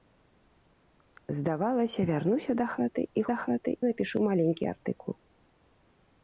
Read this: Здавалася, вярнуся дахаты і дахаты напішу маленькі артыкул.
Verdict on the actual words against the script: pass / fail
pass